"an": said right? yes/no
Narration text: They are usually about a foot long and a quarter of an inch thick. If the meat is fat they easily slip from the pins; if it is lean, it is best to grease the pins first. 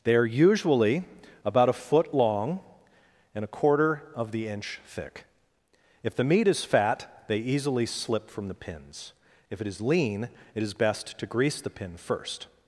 no